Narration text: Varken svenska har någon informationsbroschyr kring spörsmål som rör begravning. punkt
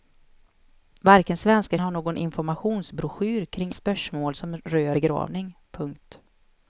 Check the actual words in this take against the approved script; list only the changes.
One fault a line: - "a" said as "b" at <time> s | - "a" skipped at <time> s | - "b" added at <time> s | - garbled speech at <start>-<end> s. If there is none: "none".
none